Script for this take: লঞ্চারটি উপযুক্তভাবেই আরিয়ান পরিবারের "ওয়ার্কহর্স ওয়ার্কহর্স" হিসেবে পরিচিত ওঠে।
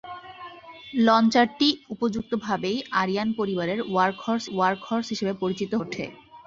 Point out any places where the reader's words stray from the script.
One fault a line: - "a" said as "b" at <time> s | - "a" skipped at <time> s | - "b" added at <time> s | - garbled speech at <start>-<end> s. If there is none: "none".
none